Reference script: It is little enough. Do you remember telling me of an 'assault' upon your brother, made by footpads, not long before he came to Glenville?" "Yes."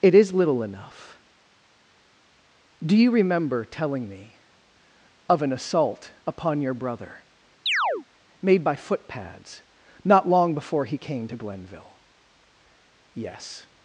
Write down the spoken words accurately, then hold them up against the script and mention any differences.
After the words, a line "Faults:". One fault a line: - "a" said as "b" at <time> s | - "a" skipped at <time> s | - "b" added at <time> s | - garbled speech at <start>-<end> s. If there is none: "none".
It is little enough. Do you remember telling me of an 'assault' upon your brother, made by footpads, not long before he came to Glenville?" "Yes."
Faults:
none